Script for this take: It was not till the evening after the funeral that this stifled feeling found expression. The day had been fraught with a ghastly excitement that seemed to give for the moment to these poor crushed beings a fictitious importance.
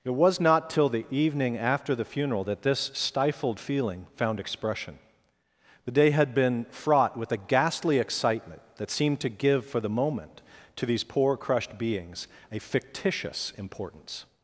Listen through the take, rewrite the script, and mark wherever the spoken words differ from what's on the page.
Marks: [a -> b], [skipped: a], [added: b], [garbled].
It was not till the evening after the funeral that this stifled feeling found expression. The day had been fraught with a ghastly excitement that seemed to give for the moment to these poor crushed beings a fictitious importance.